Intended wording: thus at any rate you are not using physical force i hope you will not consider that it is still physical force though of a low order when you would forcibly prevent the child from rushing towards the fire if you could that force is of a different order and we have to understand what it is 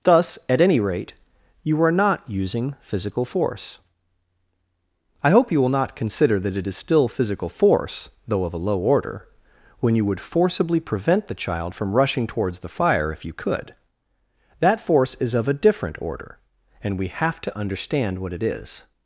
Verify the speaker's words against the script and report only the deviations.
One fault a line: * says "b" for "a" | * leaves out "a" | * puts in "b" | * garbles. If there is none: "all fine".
all fine